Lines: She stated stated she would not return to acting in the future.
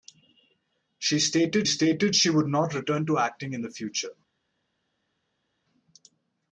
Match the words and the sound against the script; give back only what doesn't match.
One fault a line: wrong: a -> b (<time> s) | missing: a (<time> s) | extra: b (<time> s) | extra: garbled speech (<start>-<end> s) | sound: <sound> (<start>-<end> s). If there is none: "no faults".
no faults